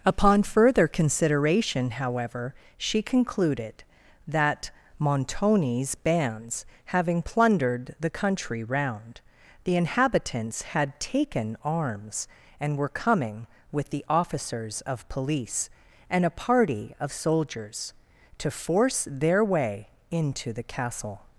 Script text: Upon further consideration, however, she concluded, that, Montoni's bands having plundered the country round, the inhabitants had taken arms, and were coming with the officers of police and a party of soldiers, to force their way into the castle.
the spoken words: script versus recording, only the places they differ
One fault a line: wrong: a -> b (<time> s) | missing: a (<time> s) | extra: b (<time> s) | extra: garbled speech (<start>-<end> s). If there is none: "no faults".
no faults